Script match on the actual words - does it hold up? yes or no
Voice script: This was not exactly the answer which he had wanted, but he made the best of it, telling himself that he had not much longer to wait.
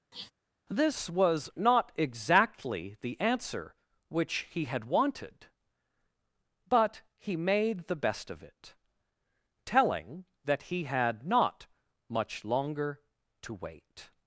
no